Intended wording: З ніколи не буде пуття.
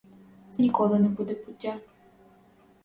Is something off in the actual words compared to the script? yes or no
no